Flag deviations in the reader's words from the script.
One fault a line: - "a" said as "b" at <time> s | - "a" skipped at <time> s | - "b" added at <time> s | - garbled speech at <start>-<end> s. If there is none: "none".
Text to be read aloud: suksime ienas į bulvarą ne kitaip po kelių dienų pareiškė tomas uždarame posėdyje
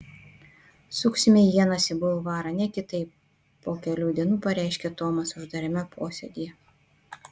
none